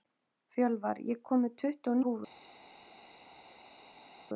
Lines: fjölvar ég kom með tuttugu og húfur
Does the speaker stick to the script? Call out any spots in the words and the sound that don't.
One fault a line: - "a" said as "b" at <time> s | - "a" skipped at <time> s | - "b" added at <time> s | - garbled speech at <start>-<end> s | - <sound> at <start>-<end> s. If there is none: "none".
none